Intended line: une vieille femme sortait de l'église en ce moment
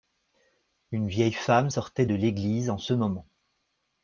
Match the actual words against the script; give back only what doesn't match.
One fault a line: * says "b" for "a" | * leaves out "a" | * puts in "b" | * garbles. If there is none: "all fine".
all fine